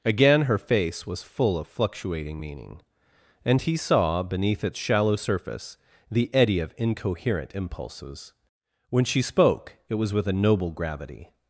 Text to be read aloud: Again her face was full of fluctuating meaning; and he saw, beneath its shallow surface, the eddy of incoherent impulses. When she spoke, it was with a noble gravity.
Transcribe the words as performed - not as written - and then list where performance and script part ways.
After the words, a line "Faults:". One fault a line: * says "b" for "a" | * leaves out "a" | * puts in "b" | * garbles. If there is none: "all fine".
Again her face was full of fluctuating meaning; and he saw, beneath its shallow surface, the eddy of incoherent impulses. When she spoke, it was with a noble gravity.
Faults:
all fine